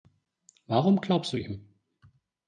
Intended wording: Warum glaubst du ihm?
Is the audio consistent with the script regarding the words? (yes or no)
yes